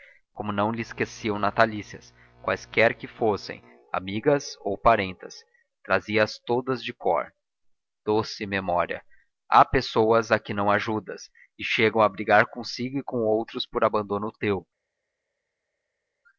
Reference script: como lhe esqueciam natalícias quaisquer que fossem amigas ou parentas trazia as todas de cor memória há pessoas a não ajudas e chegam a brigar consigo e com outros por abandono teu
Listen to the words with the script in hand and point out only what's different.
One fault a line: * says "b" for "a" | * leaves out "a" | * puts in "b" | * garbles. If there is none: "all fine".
* puts in "não"
* puts in "doce"
* puts in "que"